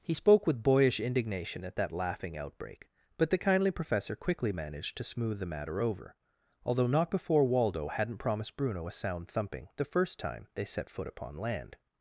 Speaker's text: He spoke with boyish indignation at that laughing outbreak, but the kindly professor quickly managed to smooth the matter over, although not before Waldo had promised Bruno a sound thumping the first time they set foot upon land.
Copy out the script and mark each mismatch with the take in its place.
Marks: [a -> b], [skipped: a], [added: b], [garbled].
He spoke with boyish indignation at that laughing outbreak, but the kindly professor quickly managed to smooth the matter over, although not before Waldo [had -> hadn't] promised Bruno a sound thumping the first time they set foot upon land.